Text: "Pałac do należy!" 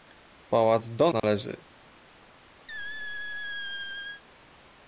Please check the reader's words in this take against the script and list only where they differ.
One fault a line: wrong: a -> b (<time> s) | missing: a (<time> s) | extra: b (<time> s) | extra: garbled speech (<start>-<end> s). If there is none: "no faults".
no faults